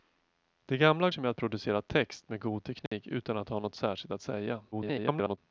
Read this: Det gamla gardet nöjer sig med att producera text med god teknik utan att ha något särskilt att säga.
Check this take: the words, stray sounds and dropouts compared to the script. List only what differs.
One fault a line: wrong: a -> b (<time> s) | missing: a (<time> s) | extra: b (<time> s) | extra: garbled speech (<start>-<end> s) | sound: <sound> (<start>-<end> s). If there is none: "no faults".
missing: gardet nöjer (1.1 s)
sound: dropout (2.9-2.9 s)
extra: garbled speech (4.7-5.4 s)